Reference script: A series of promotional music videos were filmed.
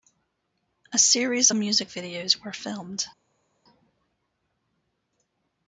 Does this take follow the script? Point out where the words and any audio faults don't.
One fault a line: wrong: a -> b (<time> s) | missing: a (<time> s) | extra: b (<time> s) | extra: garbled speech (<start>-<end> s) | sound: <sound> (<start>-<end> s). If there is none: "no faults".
missing: of promotional (1.5 s)